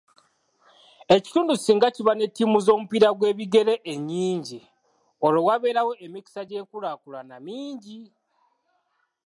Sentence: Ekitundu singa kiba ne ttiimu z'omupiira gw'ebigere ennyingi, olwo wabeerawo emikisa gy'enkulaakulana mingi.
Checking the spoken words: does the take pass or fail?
pass